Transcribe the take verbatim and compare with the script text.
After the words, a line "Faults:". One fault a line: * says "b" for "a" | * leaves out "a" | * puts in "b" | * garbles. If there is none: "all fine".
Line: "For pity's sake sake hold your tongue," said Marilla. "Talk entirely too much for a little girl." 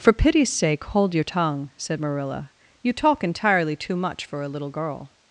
"For pity's sake hold your tongue," said Marilla. "You talk entirely too much for a little girl."
Faults:
* leaves out "sake"
* puts in "You"